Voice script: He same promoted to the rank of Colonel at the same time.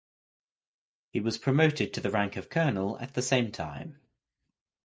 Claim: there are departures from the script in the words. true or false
true